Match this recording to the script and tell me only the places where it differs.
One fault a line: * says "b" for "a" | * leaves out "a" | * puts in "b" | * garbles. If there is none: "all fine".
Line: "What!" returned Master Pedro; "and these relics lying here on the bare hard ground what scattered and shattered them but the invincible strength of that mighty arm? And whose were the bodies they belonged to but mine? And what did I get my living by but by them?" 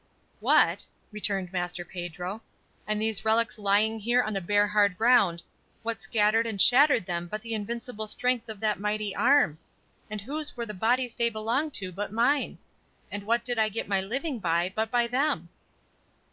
all fine